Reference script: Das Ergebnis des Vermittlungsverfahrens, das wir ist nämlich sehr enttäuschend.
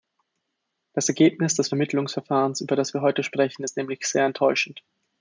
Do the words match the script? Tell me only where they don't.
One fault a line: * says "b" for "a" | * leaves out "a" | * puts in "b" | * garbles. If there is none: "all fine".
* puts in "über"
* puts in "heute sprechen"